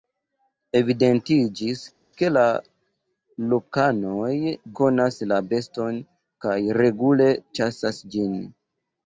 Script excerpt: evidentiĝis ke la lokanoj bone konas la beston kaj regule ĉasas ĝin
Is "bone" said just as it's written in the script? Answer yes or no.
no